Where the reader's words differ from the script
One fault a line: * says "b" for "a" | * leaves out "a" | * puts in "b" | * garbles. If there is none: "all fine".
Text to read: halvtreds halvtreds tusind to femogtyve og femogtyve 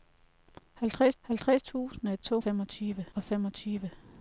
all fine